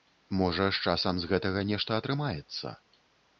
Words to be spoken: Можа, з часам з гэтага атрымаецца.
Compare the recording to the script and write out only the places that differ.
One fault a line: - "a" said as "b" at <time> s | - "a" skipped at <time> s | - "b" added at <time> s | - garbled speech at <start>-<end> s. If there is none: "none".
- "нешта" added at 1.7 s